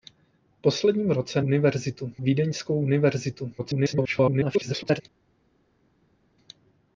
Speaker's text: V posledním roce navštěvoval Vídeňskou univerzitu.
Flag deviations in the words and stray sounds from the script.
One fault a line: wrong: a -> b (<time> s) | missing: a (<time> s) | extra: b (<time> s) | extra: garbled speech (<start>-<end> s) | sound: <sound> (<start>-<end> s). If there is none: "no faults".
wrong: navštěvoval -> univerzitu (1.4 s)
extra: garbled speech (3.6-5.0 s)